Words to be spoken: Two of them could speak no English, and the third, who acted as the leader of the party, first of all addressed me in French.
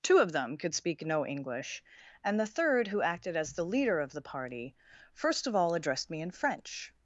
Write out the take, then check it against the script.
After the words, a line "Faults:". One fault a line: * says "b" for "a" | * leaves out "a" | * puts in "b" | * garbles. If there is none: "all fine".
Two of them could speak no English, and the third, who acted as the leader of the party, first of all addressed me in French.
Faults:
all fine